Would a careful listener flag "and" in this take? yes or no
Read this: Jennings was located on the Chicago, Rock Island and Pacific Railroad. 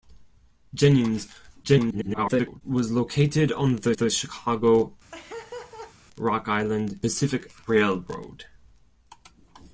yes